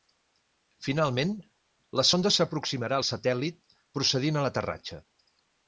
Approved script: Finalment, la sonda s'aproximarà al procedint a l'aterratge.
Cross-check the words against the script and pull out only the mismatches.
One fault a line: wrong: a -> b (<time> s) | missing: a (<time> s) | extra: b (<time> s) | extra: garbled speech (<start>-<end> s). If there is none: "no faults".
extra: satèl·lit (3.1 s)